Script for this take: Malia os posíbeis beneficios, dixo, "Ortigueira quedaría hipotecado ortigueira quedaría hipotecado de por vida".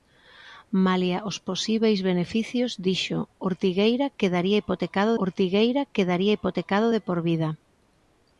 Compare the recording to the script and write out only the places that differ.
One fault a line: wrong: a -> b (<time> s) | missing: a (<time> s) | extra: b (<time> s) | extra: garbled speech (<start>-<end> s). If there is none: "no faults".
no faults